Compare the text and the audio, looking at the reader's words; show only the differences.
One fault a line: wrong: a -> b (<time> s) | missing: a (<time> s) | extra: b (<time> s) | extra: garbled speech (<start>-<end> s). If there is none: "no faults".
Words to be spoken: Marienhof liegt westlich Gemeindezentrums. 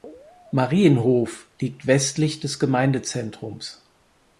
extra: des (2.4 s)